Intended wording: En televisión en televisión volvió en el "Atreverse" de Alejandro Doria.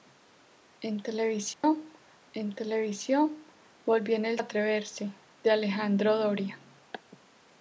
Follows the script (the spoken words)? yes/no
yes